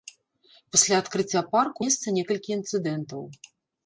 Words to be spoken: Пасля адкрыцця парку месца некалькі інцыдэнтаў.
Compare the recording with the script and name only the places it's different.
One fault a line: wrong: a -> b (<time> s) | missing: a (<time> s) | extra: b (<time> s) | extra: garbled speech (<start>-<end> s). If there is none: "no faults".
no faults